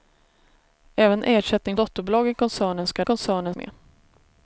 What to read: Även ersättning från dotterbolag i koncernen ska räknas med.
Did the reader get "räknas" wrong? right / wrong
wrong